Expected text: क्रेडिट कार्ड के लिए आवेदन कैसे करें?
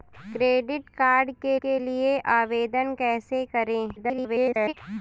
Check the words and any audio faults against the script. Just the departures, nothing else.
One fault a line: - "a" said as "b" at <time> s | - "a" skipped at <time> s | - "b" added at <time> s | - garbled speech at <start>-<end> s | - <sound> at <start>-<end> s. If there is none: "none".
- "के" added at 1.6 s
- garbled speech at 4.0-4.7 s